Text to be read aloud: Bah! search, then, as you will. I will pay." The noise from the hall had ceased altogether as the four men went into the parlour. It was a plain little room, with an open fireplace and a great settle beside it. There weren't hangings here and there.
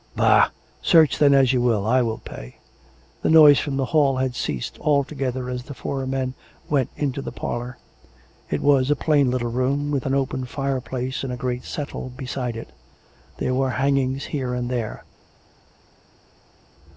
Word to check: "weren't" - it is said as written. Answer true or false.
false